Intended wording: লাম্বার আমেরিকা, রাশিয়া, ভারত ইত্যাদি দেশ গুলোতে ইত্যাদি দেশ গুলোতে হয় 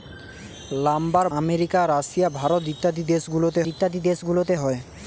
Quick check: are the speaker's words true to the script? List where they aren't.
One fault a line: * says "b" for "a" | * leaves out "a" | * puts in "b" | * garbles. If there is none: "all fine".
all fine